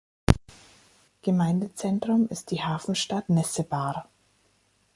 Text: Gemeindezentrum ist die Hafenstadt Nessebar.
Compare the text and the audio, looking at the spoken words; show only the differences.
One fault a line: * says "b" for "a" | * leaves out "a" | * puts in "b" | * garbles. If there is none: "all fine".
all fine